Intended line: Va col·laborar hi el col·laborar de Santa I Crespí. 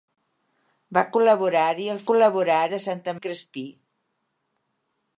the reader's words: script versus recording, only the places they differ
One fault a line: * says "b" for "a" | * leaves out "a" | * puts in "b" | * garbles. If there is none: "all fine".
all fine